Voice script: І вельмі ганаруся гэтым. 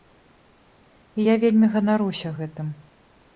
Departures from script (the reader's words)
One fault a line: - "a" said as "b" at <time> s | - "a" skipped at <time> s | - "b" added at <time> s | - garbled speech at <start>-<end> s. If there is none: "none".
- "я" added at 1.2 s